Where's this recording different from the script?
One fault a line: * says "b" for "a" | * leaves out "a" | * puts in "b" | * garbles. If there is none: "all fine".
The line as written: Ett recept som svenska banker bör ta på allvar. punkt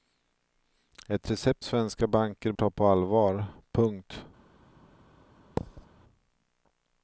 * leaves out "som"
* leaves out "bör"